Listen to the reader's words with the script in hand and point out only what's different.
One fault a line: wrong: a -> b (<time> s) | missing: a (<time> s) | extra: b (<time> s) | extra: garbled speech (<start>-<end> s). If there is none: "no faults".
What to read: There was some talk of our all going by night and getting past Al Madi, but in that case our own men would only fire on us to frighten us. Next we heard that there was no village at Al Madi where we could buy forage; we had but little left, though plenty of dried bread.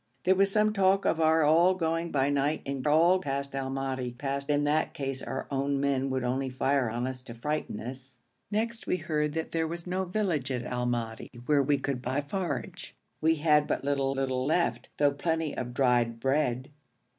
wrong: getting -> all (2.9 s)
wrong: but -> past (4.2 s)
extra: little (14.1 s)